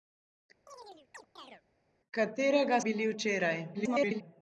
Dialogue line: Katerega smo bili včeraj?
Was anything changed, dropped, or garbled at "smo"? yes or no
yes